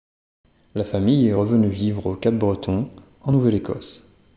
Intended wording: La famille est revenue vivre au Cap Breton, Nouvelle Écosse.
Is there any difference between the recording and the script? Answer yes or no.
yes